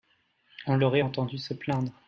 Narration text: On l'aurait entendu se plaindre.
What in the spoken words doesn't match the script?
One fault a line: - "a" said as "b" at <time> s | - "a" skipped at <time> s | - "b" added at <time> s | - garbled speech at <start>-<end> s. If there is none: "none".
none